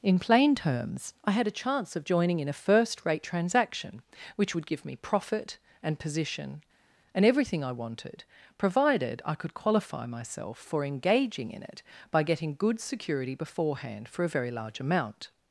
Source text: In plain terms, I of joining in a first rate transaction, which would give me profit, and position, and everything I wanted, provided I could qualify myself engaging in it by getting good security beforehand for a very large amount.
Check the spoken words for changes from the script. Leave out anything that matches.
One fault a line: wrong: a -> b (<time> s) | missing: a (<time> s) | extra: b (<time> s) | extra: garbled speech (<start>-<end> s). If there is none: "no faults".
extra: had a chance (1.3 s)
extra: for (10.6 s)